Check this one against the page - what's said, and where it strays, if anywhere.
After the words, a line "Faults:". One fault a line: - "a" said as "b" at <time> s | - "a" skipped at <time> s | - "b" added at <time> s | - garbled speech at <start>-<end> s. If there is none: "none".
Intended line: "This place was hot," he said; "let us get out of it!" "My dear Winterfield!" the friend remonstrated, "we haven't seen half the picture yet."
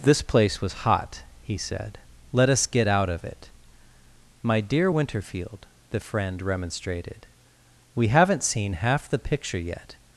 "This place was hot," he said; "let us get out of it!" "My dear Winterfield!" the friend remonstrated, "we haven't seen half the picture yet."
Faults:
none